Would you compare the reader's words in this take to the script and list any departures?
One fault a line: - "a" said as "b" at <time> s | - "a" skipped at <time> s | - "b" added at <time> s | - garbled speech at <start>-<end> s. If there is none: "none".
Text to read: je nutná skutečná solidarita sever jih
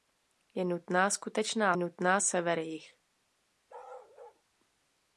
- "solidarita" said as "nutná" at 1.8 s